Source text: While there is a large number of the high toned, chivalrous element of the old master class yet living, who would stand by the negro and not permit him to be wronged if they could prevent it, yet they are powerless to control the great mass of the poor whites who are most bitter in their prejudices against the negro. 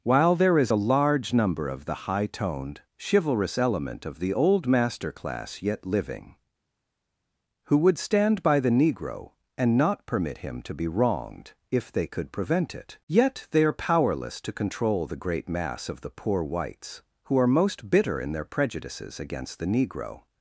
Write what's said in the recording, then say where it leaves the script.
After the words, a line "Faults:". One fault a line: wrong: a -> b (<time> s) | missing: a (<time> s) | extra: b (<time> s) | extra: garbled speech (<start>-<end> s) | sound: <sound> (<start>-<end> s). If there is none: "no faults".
While there is a large number of the high toned, chivalrous element of the old master class yet living, who would stand by the negro and not permit him to be wronged if they could prevent it, yet they are powerless to control the great mass of the poor whites who are most bitter in their prejudices against the negro.
Faults:
no faults